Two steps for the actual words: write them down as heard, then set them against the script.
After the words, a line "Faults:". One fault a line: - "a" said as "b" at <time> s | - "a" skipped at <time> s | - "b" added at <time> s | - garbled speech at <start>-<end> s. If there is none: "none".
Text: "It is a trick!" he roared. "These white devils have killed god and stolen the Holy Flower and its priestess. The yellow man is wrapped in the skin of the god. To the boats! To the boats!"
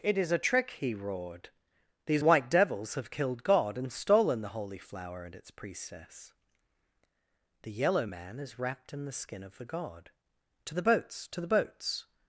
"It is a trick!" he roared. "These white devils have killed god and stolen the Holy Flower and its priestess. The yellow man is wrapped in the skin of the god. To the boats! To the boats!"
Faults:
none